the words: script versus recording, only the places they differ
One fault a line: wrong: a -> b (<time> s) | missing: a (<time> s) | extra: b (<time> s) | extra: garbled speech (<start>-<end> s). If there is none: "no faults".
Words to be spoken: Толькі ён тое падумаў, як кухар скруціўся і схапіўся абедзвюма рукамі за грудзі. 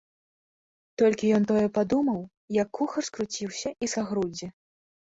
missing: схапіўся абедзвюма рукамі (3.9 s)